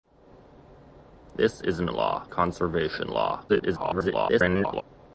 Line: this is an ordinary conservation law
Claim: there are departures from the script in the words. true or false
true